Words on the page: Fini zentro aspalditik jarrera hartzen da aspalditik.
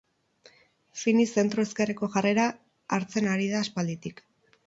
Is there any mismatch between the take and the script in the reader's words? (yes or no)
yes